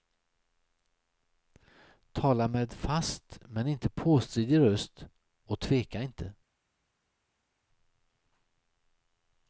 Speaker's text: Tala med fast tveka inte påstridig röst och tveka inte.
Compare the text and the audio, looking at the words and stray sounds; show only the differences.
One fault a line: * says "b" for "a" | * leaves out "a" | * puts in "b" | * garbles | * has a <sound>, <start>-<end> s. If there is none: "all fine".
* says "men" for "tveka"